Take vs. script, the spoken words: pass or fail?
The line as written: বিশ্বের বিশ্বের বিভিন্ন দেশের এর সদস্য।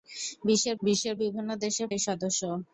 pass